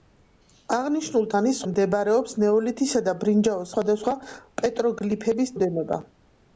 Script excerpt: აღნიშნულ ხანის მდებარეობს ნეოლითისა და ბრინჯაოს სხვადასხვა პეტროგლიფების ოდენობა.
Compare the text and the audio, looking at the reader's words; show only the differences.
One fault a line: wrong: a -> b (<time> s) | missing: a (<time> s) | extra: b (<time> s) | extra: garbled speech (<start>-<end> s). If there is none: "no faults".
no faults